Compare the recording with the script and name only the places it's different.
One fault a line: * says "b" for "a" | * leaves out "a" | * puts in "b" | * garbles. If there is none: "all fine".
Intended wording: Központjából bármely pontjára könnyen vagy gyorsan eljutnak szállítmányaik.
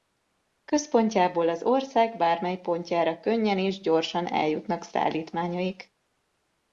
* puts in "az ország"
* says "és" for "vagy"